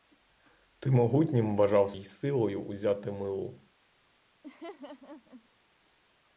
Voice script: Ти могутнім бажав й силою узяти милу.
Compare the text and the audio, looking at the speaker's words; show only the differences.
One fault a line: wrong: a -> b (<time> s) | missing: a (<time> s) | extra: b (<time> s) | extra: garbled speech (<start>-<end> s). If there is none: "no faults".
no faults